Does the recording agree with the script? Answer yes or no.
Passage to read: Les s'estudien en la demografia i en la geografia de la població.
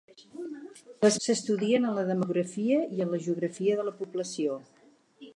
yes